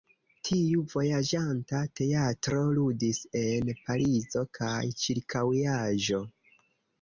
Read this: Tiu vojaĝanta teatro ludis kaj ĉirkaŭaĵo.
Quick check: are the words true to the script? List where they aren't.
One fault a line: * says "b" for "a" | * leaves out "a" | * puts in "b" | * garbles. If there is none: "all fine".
* puts in "en Parizo"